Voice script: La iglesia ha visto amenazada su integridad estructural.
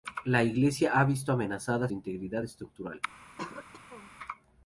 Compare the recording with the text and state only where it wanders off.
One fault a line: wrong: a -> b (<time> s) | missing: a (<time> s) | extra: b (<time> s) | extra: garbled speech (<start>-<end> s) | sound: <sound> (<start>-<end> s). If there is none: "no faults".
missing: su (1.9 s)
sound: throat clearing (3.4-4.1 s)